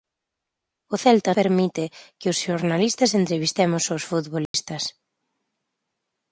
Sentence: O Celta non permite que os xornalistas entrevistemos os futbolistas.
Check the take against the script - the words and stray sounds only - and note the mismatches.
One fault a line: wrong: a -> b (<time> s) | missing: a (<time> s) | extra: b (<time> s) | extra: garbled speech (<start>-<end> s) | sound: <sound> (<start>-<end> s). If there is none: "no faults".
missing: non (1.3 s)
sound: dropout (4.5-4.5 s)